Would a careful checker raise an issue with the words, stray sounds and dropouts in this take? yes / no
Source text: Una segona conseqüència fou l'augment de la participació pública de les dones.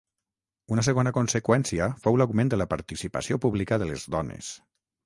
no